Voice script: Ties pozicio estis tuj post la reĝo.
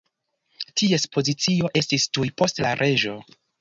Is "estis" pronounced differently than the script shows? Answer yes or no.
no